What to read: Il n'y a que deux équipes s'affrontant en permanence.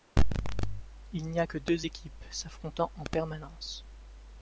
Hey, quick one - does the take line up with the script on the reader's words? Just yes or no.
yes